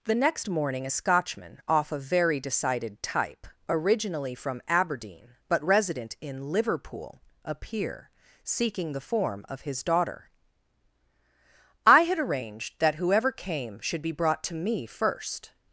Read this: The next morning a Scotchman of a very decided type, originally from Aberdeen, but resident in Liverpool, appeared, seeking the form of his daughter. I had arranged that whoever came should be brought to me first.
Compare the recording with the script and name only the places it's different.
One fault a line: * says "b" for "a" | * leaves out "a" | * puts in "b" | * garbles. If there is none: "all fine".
* says "off" for "of"
* says "appear" for "appeared"